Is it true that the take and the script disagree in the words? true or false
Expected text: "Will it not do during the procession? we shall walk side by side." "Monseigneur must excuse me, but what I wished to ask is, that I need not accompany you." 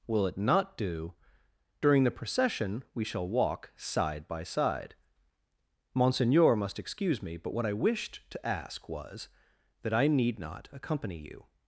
true